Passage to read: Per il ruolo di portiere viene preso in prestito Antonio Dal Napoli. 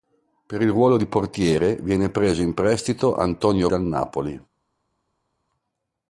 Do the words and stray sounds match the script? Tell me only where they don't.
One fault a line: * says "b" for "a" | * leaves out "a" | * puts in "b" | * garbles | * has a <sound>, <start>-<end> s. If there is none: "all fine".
all fine